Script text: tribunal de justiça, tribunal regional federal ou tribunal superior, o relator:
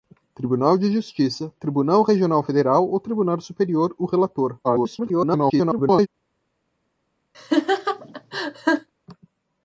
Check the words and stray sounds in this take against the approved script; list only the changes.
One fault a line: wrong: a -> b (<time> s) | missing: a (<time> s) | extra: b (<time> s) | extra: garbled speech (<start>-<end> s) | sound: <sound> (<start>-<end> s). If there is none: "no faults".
extra: garbled speech (4.6-6.1 s)
sound: laugh (7.3-8.9 s)